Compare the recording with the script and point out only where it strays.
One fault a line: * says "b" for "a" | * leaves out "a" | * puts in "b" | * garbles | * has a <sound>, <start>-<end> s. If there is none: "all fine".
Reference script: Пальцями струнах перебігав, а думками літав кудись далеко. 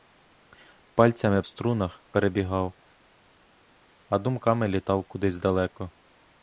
all fine